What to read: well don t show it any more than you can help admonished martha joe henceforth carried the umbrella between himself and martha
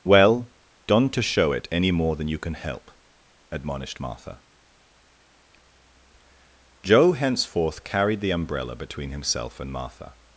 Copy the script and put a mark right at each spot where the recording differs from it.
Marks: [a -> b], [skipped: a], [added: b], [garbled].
well [don t -> don't to] show it any more than you can help admonished martha joe henceforth carried the umbrella between himself and martha